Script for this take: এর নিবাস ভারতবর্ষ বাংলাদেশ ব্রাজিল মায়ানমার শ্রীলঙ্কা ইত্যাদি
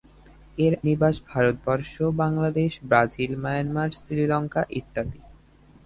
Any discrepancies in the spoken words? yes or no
no